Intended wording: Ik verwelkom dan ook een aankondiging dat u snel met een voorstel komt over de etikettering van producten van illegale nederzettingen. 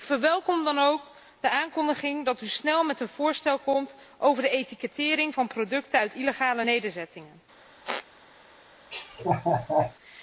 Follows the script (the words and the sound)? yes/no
no